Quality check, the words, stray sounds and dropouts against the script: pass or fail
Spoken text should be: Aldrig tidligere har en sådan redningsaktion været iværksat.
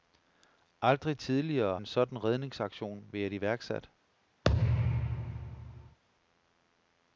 fail